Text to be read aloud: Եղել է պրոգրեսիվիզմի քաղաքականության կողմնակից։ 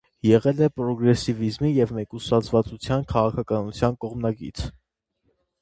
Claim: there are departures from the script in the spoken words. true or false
true